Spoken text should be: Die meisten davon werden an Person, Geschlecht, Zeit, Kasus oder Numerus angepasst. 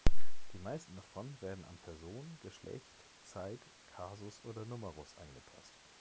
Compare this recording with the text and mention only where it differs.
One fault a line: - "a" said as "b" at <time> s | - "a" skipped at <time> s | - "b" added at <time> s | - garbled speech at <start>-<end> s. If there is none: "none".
none